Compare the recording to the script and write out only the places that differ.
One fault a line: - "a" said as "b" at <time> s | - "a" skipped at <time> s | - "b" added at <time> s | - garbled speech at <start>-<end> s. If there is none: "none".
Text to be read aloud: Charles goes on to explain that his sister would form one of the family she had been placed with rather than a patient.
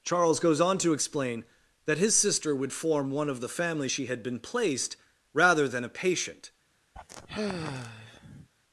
- "with" skipped at 5.0 s